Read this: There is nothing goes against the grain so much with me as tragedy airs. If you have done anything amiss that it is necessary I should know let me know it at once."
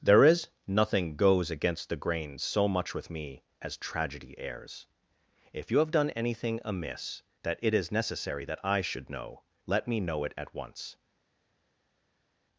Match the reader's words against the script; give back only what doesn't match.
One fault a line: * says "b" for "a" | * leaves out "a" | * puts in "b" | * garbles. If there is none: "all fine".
* puts in "that"